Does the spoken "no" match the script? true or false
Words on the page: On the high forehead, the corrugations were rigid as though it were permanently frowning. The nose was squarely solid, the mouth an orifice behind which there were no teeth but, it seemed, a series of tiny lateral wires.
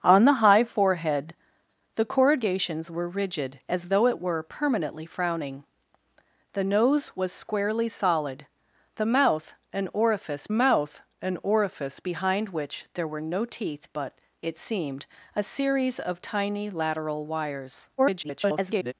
true